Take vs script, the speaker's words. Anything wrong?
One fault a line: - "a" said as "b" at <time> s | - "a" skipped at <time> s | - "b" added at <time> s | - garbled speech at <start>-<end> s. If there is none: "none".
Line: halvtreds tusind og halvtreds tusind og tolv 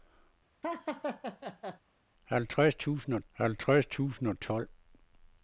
none